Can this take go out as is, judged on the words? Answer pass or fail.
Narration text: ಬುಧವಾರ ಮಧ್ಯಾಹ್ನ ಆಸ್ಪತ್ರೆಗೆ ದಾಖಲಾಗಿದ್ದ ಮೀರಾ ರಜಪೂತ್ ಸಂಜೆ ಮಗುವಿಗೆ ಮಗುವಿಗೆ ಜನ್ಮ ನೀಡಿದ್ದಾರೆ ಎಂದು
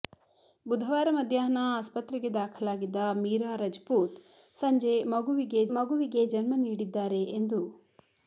pass